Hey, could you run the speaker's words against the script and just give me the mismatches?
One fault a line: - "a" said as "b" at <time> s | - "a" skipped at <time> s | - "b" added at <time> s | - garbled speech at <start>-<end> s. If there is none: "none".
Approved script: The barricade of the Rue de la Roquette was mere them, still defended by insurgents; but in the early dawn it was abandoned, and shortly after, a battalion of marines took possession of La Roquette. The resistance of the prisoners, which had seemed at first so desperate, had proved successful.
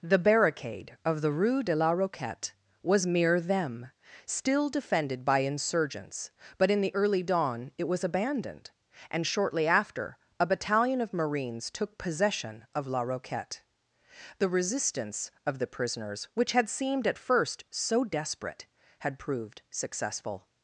none